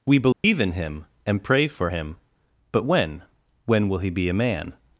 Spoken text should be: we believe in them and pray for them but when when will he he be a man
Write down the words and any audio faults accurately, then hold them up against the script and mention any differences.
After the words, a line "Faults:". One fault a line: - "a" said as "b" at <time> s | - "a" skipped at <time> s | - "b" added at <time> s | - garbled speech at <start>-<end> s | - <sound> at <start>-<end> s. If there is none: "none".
we believe in him and pray for him but when when will he be a man
Faults:
- dropout at 0.3-0.4 s
- "them" said as "him" at 0.7 s
- "them" said as "him" at 1.9 s
- "he" skipped at 4.1 s